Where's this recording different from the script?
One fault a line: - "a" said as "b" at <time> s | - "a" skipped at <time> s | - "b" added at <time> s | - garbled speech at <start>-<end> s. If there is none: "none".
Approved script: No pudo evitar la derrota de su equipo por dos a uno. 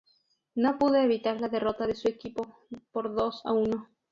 none